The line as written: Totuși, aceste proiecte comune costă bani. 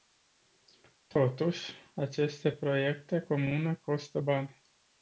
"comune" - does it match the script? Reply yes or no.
yes